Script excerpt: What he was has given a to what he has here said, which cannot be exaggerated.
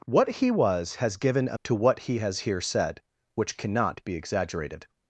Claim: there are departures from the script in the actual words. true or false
false